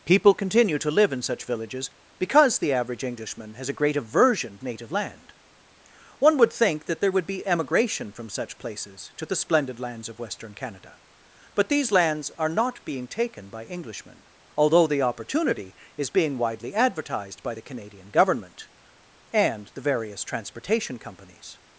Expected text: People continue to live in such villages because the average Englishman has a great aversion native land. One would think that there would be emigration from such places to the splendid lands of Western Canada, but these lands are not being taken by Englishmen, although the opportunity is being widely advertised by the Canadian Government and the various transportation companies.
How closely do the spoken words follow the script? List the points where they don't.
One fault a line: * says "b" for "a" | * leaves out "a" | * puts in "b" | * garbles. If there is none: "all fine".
all fine